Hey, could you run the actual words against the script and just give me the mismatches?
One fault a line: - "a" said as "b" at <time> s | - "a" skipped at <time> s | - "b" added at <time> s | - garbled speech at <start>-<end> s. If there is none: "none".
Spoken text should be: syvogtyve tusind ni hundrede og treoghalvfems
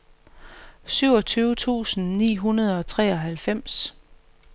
none